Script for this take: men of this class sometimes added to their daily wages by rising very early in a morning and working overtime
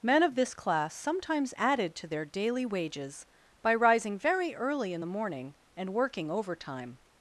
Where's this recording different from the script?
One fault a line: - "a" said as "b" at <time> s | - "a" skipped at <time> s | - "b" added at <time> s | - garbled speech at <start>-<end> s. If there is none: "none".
- "a" said as "the" at 5.0 s